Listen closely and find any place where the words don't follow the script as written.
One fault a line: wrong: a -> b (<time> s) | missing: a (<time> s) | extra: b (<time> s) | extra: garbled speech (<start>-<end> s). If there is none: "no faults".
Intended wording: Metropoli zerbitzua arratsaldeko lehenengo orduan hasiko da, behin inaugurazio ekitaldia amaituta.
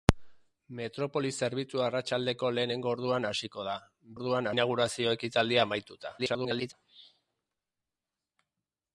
wrong: behin -> orduan (4.1 s)
extra: garbled speech (6.2-6.7 s)